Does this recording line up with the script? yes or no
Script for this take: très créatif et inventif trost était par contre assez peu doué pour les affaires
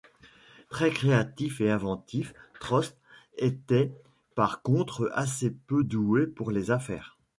yes